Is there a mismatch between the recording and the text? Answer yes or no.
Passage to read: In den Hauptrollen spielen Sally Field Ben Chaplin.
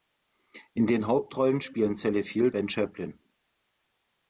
no